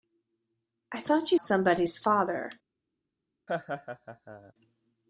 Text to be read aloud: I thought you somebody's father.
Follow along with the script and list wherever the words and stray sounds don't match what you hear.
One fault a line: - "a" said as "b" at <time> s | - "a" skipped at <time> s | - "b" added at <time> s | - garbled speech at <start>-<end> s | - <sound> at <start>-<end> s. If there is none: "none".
- laugh at 3.5-4.5 s